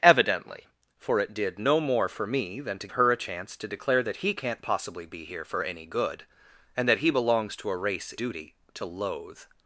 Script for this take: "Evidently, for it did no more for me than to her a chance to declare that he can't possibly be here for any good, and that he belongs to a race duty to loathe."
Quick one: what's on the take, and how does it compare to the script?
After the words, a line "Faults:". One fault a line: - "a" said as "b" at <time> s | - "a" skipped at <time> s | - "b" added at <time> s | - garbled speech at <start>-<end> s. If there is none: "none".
"Evidently, for it did no more for me than to her a chance to declare that he can't possibly be here for any good, and that he belongs to a race duty to loathe."
Faults:
none